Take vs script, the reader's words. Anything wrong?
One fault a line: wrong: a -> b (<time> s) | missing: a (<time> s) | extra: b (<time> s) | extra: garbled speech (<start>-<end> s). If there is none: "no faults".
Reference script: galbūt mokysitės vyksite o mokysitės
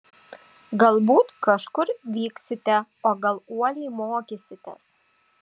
wrong: mokysitės -> kažkur (1.5 s)
extra: gal uoliai (3.3 s)